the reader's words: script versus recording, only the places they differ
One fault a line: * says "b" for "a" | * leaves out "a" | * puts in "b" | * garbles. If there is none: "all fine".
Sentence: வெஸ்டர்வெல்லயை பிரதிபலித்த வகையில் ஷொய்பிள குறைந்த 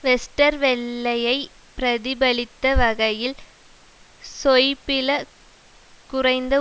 all fine